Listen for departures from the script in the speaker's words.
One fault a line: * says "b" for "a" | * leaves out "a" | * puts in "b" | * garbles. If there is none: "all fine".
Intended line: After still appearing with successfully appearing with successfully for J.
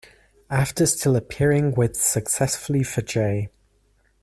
* leaves out "appearing with successfully"